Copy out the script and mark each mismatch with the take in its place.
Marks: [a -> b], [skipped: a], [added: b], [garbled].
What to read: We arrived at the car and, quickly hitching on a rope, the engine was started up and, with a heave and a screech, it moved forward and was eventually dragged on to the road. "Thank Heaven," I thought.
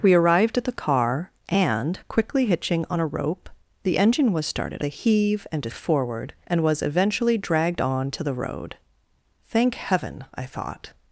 We arrived at the car and, quickly hitching on a rope, the engine was started [skipped: up and, with] a heave and a [skipped: screech, it moved] forward and was eventually dragged on to the road. "Thank Heaven," I thought.